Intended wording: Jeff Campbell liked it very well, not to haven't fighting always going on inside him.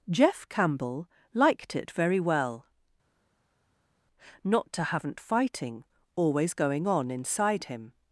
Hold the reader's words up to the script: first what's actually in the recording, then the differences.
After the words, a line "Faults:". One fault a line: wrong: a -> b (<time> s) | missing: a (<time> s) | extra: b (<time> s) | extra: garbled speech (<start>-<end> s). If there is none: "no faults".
Jeff Campbell liked it very well, not to haven't fighting always going on inside him.
Faults:
no faults